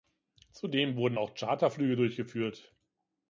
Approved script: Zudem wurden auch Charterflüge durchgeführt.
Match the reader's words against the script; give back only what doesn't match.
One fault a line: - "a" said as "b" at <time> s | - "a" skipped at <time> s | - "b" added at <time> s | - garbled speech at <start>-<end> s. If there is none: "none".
none